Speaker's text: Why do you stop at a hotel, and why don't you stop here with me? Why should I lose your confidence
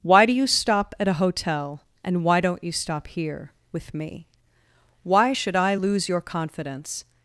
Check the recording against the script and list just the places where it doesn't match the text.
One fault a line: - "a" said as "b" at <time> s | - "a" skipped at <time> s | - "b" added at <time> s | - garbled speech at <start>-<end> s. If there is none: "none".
none